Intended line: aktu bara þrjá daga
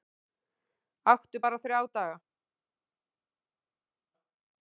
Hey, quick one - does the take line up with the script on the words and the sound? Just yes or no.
yes